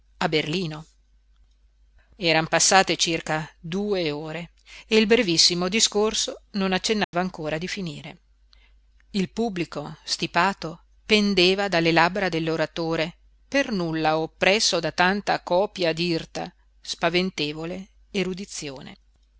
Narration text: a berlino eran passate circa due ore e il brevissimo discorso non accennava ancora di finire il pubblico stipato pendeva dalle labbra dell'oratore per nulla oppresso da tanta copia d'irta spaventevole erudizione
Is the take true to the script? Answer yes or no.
yes